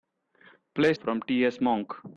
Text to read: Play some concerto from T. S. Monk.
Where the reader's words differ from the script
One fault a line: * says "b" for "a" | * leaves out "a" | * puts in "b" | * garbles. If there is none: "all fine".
* leaves out "some concerto"